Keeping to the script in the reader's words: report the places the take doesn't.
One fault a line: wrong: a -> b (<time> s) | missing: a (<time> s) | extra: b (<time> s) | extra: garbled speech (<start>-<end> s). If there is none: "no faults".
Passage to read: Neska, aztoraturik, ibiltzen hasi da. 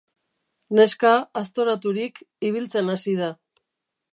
no faults